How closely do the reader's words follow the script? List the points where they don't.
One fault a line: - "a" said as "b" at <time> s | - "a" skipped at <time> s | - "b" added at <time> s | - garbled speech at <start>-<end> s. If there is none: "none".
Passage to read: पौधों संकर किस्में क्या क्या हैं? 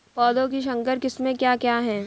- "की" added at 0.5 s